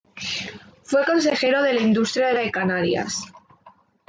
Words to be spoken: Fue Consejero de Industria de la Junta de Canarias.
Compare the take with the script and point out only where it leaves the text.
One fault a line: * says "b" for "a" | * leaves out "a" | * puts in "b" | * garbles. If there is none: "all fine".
* leaves out "la Junta"